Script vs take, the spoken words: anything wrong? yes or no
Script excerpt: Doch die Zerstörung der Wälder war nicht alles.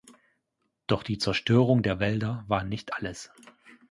no